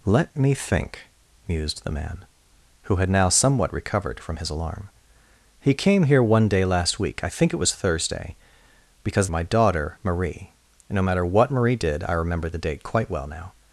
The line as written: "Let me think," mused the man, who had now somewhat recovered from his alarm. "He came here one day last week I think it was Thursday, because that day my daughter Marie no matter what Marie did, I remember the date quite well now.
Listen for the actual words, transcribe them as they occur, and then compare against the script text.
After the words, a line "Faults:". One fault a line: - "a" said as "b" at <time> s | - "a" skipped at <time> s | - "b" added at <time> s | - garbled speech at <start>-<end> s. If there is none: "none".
"Let me think," mused the man, who had now somewhat recovered from his alarm. "He came here one day last week I think it was Thursday, because my daughter Marie no matter what Marie did, I remember the date quite well now.
Faults:
- "that day" skipped at 9.3 s